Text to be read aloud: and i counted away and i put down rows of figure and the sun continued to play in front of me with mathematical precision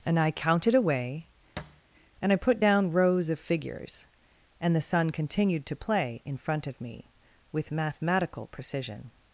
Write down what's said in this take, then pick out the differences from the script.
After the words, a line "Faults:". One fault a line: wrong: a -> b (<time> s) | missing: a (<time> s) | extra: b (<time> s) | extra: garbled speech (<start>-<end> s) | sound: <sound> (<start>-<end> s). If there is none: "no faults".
and i counted away and i put down rows of figures and the sun continued to play in front of me with mathematical precision
Faults:
sound: thud (1.6-1.8 s)
wrong: figure -> figures (3.4 s)